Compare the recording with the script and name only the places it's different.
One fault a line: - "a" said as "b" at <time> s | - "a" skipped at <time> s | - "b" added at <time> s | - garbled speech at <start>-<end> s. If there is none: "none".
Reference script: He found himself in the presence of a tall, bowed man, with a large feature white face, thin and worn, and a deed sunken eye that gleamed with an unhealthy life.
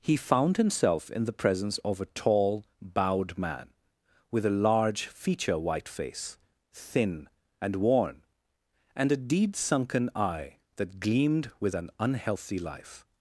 none